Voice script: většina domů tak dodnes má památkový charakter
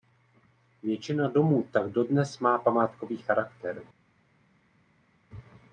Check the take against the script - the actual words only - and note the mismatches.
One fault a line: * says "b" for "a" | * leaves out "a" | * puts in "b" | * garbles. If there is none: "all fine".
all fine